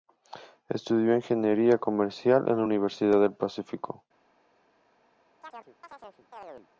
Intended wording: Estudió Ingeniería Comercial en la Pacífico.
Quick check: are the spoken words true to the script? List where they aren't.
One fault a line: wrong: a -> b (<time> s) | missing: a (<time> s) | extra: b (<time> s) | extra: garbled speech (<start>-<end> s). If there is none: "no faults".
extra: Universidad del (2.6 s)